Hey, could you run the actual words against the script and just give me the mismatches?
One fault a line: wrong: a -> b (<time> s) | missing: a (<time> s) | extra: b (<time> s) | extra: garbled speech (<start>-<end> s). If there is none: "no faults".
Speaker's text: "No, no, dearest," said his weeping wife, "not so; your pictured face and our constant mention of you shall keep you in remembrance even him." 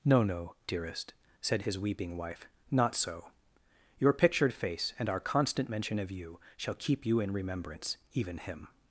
no faults